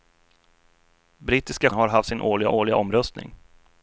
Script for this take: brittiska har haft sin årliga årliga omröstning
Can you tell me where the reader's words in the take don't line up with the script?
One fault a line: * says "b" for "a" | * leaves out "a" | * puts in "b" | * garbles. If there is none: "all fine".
all fine